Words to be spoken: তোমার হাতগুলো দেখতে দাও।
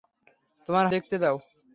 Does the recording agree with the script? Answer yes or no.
no